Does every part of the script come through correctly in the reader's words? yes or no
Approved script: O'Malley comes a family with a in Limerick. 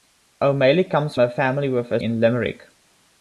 yes